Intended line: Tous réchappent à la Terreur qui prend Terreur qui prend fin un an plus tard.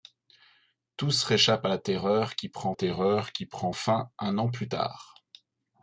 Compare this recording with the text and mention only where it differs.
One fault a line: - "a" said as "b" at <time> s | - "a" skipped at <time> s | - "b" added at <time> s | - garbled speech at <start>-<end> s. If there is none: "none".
none